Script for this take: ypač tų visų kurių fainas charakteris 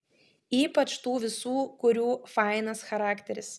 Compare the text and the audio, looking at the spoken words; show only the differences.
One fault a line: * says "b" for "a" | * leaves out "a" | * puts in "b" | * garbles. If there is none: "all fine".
all fine